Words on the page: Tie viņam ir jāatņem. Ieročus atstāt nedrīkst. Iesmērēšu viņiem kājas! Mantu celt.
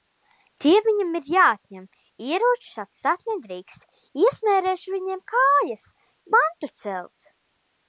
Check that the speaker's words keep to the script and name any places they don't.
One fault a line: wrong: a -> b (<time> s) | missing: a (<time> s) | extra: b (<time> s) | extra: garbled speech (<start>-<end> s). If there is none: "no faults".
no faults